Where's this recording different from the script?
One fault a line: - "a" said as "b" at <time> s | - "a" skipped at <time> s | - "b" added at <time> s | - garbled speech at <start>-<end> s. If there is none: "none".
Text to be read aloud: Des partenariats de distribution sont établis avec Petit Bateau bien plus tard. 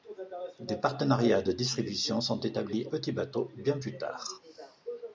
- "avec" skipped at 2.9 s